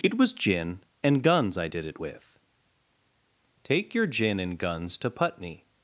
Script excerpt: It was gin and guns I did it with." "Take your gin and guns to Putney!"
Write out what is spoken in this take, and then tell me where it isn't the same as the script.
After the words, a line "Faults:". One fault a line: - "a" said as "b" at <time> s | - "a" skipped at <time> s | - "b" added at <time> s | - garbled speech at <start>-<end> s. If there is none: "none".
It was gin and guns I did it with." "Take your gin and guns to Putney!"
Faults:
none